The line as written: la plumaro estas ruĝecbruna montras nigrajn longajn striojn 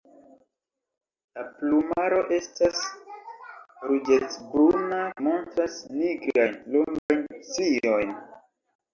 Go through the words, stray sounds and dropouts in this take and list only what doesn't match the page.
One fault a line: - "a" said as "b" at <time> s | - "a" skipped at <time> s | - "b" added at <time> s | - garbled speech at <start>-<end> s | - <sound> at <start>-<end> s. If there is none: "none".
- dropout at 7.0-7.1 s